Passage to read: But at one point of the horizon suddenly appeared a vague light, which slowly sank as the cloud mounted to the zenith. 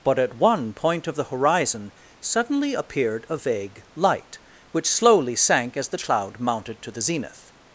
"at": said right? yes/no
yes